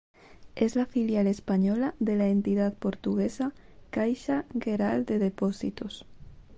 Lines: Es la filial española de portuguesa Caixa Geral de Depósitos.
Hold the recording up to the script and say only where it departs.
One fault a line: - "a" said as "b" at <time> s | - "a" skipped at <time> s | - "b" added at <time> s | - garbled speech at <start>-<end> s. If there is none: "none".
- "la entidad" added at 2.2 s